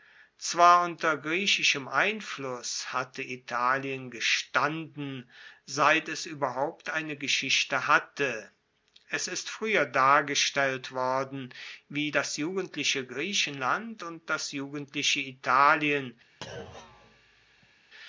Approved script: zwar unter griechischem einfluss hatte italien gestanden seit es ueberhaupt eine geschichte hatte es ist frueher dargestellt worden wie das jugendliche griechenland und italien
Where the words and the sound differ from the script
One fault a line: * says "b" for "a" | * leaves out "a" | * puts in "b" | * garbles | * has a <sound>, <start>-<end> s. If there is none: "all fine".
* puts in "das jugendliche"
* has a thud, 16.4-17.8 s